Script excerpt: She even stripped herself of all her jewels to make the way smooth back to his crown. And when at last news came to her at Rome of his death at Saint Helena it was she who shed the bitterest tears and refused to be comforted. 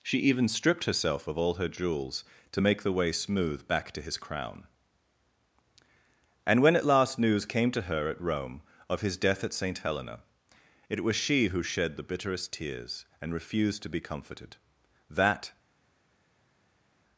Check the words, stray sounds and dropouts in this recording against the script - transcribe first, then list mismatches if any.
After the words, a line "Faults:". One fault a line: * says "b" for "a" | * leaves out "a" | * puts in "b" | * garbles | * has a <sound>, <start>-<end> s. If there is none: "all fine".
She even stripped herself of all her jewels to make the way smooth back to his crown. And when at last news came to her at Rome of his death at Saint Helena it was she who shed the bitterest tears and refused to be comforted. That
Faults:
* puts in "That"